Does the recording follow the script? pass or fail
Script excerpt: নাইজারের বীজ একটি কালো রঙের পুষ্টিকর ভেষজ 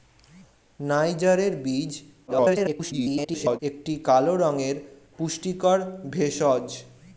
fail